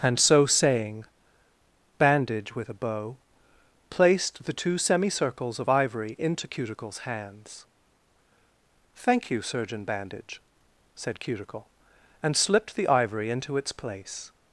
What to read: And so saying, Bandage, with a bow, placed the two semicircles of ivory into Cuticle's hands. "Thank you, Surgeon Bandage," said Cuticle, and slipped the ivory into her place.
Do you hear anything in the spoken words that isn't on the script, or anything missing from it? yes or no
yes